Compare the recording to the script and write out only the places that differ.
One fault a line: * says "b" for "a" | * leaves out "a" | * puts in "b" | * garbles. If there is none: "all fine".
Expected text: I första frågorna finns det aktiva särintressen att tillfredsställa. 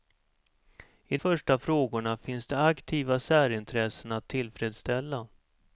all fine